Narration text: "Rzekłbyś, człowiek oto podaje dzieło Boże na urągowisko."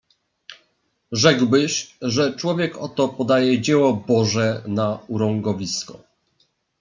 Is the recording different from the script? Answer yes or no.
yes